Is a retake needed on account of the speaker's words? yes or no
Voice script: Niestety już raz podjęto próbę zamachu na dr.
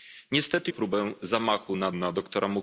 yes